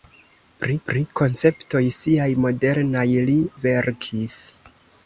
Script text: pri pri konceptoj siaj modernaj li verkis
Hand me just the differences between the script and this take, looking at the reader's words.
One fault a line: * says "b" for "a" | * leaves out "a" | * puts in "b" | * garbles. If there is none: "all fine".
all fine